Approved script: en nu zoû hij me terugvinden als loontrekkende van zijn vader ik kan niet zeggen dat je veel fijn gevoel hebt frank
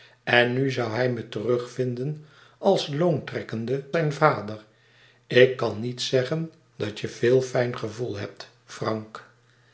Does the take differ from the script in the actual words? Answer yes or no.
yes